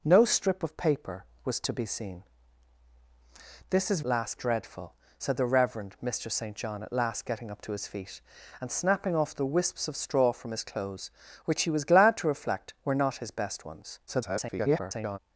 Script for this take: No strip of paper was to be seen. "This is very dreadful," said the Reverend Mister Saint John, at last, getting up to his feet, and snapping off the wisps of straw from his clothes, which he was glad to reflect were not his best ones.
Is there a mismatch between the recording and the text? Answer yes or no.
yes